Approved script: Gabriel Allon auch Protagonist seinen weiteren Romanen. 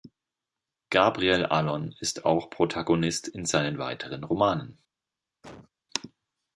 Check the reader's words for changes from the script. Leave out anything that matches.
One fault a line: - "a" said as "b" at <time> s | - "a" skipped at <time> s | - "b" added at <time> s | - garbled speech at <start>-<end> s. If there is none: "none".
- "ist" added at 2.0 s
- "in" added at 3.3 s